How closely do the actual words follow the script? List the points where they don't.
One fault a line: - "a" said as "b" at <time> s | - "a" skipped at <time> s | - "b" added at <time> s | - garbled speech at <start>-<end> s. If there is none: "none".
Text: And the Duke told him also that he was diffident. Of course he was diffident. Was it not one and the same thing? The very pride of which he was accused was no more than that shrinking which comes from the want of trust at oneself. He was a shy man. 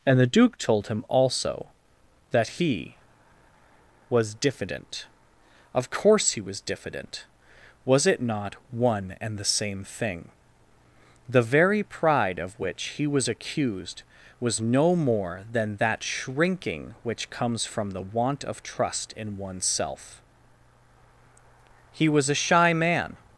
- "at" said as "in" at 19.2 s